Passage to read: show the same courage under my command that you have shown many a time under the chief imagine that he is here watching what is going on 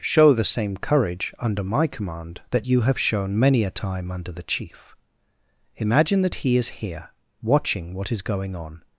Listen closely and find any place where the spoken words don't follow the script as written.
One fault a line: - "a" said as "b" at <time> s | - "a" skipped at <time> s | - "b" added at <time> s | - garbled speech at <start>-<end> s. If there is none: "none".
none